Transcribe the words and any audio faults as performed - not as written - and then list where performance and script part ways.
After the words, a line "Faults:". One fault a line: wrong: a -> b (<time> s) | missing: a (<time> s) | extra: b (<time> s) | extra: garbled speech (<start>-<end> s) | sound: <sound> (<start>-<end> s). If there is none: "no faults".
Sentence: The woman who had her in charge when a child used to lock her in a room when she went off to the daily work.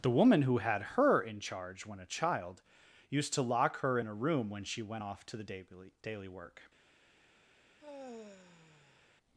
The woman who had her in charge when a child used to lock her in a room when she went off to the daily daily work.
Faults:
extra: daily (6.0 s)
sound: sigh (7.8-9.1 s)